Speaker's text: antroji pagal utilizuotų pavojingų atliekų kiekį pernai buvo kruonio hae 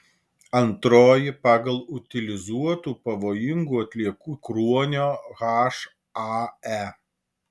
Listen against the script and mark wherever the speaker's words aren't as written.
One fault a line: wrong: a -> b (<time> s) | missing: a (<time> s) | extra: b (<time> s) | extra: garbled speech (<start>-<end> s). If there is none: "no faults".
missing: kiekį pernai buvo (4.3 s)